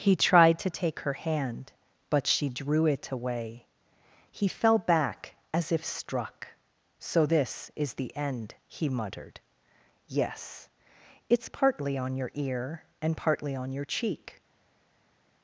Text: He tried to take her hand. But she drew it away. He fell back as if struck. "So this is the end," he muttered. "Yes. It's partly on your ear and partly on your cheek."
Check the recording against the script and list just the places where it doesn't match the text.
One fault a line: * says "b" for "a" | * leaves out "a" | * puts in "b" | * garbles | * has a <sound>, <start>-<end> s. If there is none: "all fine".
all fine